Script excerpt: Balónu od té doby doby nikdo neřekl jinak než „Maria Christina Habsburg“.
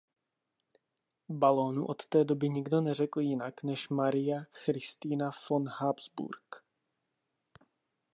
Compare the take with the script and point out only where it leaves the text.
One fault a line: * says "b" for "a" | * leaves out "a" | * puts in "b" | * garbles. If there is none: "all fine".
* leaves out "doby"
* puts in "von"